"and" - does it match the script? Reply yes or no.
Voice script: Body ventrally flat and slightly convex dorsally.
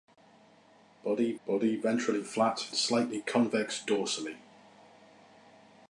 no